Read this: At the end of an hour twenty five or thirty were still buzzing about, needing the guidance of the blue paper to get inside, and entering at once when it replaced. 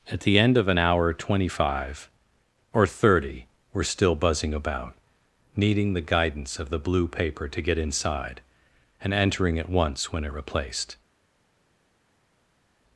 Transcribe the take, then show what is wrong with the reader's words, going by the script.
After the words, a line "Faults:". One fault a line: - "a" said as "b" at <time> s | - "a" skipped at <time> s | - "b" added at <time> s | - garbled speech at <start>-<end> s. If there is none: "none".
At the end of an hour twenty five or thirty were still buzzing about, needing the guidance of the blue paper to get inside, and entering at once when it replaced.
Faults:
none